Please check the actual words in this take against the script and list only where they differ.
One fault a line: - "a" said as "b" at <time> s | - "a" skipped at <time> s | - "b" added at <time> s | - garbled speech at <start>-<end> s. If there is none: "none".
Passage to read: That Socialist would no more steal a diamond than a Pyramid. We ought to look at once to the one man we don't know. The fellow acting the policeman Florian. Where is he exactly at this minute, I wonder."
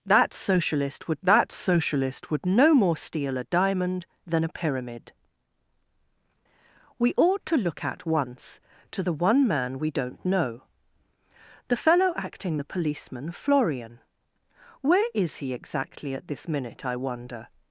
- "that Socialist would" added at 1.2 s